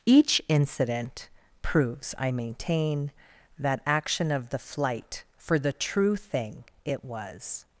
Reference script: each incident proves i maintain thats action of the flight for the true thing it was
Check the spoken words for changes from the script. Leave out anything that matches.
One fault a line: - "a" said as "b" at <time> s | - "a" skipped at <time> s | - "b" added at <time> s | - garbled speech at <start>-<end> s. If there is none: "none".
- "thats" said as "that" at 3.6 s